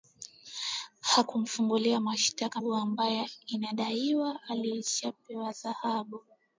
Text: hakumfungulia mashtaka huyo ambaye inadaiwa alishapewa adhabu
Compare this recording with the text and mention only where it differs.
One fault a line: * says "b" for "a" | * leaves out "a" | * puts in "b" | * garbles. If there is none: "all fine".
all fine